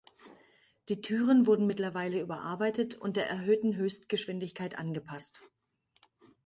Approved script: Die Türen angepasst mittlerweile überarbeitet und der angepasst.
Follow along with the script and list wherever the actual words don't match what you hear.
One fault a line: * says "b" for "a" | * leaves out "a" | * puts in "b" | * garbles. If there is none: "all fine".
* says "wurden" for "angepasst"
* puts in "erhöhten Höchstgeschwindigkeit"